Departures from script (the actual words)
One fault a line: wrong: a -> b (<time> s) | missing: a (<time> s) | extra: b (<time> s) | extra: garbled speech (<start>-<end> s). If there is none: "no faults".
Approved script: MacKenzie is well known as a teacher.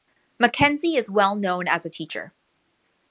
no faults